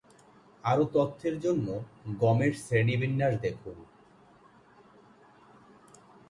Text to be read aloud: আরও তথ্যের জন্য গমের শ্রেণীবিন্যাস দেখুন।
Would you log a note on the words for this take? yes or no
no